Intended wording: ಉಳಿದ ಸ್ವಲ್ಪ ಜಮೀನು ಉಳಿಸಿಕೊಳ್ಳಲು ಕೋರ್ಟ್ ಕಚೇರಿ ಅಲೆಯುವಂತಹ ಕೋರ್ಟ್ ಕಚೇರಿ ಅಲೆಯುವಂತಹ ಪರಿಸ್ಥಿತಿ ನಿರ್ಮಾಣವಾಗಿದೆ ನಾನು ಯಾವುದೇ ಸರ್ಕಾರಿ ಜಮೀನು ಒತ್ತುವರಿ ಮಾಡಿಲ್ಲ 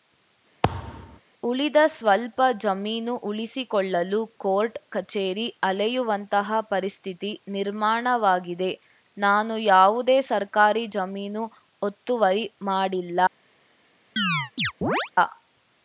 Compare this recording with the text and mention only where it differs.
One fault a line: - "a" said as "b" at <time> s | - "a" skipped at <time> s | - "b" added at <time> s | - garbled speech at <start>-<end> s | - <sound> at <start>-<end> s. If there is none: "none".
- thud at 0.6-1.2 s
- "ಕೋರ್ಟ್ ಕಚೇರಿ ಅಲೆಯುವಂತಹ" skipped at 6.6 s
- chirp at 14.2-15.1 s